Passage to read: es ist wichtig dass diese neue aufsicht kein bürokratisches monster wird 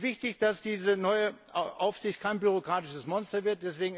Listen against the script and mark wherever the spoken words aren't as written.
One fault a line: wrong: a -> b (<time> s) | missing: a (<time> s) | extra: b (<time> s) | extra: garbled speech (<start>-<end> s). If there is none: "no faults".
no faults